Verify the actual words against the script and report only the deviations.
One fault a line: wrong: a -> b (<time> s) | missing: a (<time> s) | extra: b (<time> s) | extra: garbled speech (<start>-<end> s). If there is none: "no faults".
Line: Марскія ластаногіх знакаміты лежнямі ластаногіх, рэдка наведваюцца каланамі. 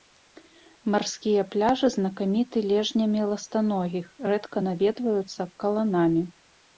wrong: ластаногіх -> пляжы (1.6 s)